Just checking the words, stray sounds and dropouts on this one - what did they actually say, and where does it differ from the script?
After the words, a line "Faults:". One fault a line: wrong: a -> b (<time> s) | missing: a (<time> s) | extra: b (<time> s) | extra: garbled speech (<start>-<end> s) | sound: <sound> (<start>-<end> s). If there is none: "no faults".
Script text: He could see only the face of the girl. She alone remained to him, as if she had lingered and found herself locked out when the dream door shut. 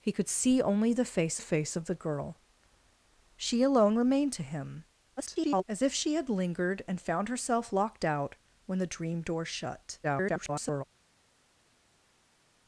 He could see only the face face of the girl. She alone remained to him, [garbled] as if she had lingered and found herself locked out when the dream door shut. [garbled]
Faults:
extra: face (1.4 s)
extra: garbled speech (5.2-5.6 s)
extra: garbled speech (10.0-10.8 s)